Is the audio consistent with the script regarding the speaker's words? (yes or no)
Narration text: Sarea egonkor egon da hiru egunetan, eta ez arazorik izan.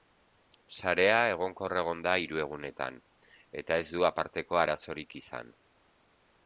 no